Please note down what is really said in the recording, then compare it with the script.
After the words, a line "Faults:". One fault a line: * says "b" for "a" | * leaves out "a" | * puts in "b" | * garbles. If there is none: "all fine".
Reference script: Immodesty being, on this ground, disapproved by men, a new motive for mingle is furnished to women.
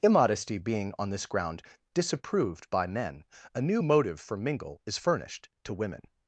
Immodesty being, on this ground, disapproved by men, a new motive for mingle is furnished to women.
Faults:
all fine